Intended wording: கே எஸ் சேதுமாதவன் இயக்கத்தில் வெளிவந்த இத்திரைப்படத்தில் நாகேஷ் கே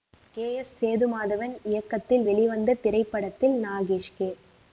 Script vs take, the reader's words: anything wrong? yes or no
no